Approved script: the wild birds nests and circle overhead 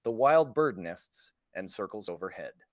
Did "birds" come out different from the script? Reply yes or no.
yes